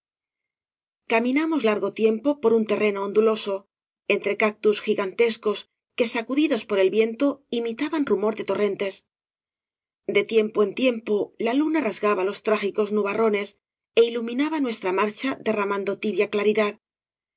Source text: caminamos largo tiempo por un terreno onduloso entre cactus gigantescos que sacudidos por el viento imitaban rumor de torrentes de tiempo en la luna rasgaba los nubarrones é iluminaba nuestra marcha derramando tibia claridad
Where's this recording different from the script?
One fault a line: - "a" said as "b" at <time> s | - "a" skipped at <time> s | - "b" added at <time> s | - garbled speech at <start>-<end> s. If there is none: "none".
- "tiempo" added at 10.8 s
- "trágicos" added at 12.5 s